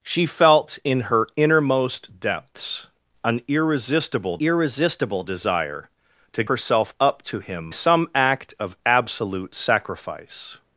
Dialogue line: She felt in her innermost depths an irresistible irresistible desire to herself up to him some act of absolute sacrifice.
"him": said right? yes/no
yes